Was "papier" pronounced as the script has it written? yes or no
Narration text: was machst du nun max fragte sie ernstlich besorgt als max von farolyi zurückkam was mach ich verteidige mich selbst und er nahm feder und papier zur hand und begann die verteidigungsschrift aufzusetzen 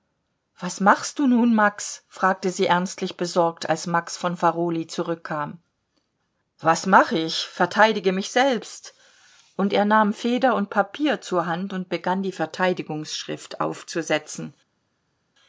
yes